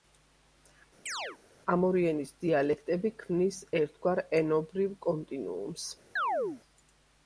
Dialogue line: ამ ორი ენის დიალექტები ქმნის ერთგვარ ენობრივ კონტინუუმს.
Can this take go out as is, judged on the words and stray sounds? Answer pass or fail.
fail